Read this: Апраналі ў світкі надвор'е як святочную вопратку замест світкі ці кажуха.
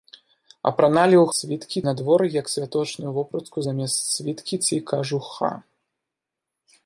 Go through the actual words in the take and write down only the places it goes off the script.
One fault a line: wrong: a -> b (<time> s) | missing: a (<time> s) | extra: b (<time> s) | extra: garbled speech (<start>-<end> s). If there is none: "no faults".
no faults